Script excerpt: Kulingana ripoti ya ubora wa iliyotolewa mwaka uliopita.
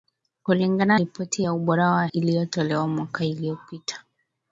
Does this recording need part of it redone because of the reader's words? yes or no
no